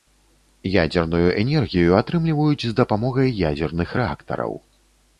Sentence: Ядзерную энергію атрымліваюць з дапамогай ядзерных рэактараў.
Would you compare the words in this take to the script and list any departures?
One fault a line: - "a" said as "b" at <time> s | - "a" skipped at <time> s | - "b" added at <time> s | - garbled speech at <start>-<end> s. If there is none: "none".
none